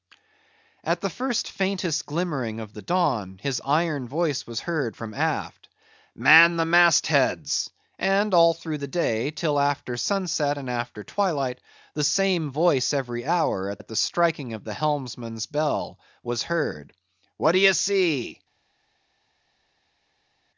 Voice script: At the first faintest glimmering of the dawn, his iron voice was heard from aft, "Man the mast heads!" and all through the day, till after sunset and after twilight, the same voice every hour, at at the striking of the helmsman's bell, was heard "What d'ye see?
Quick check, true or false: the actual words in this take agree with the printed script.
true